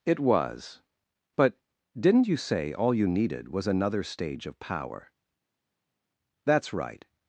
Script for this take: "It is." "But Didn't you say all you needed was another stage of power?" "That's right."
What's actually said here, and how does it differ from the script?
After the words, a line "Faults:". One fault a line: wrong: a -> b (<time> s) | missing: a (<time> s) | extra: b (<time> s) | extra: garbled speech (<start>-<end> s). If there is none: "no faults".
"It was." "But Didn't you say all you needed was another stage of power?" "That's right."
Faults:
wrong: is -> was (0.2 s)